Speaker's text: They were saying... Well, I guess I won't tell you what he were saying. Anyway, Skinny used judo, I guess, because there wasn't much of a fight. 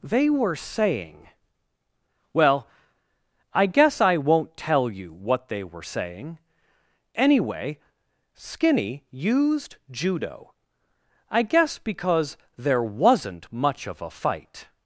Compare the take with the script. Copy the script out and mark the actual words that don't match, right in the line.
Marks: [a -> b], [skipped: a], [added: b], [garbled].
They were saying... Well, I guess I won't tell you what [he -> they] were saying. Anyway, Skinny used judo, I guess, because there wasn't much of a fight.